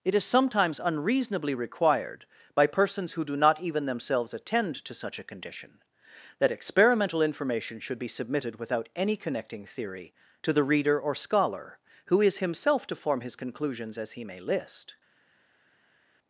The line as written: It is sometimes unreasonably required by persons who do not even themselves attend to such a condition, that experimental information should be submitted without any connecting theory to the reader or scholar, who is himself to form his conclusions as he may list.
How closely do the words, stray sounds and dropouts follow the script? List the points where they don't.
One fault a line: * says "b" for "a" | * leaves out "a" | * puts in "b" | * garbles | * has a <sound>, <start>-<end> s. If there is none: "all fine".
all fine